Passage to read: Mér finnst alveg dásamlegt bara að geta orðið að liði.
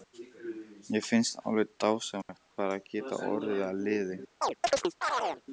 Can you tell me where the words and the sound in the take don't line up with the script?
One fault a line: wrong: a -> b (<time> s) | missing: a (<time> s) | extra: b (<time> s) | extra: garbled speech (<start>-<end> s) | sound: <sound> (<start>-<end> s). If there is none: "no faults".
sound: dropout (2.2-2.3 s)
sound: chirp (4.4-5.4 s)